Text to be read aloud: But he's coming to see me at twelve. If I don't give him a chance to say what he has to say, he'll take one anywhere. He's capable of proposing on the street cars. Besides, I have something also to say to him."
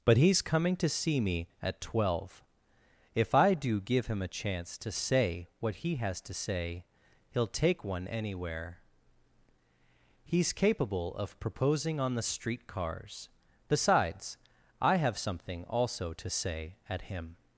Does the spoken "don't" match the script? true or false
false